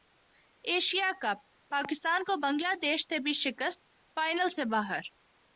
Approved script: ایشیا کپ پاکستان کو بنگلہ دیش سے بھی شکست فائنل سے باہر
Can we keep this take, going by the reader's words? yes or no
yes